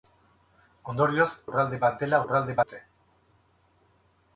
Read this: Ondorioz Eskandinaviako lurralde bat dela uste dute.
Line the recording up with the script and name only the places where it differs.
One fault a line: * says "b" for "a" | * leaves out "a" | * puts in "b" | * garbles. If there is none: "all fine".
* leaves out "Eskandinaviako"
* says "lurralde" for "uste"